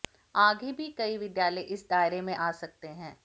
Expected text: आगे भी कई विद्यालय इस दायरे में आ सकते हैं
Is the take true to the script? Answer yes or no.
yes